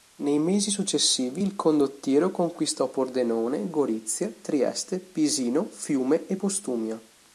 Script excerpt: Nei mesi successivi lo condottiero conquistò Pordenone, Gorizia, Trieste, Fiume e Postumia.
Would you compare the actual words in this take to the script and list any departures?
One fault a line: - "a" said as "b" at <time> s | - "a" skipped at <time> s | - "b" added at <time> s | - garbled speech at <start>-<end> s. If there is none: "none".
- "lo" said as "il" at 1.4 s
- "Pisino" added at 5.0 s